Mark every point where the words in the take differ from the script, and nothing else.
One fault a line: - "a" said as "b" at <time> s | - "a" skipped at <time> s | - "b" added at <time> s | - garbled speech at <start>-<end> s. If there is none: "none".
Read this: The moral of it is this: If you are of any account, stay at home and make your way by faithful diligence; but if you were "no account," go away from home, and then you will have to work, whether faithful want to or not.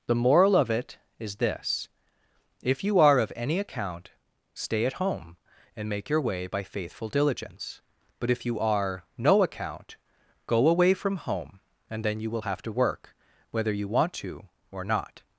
- "were" said as "are" at 8.6 s
- "faithful" said as "you" at 13.7 s